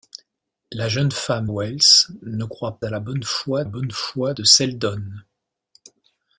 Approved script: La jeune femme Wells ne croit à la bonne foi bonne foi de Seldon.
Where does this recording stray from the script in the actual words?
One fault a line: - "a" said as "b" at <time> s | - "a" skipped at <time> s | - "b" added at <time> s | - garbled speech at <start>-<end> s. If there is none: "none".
none